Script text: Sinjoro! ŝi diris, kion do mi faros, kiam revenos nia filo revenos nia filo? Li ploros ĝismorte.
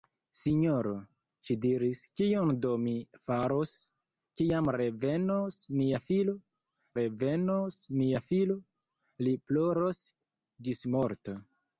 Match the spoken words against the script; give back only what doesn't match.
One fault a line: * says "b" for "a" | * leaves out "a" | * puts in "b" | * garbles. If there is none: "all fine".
all fine